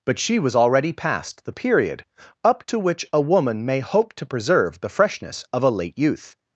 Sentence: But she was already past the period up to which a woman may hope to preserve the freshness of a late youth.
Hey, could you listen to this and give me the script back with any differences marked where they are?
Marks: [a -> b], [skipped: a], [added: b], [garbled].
But she was already past the period up to which a woman may hope to preserve the freshness of a late youth.